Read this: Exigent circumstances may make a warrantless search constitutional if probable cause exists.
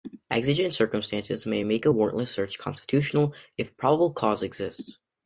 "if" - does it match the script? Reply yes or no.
yes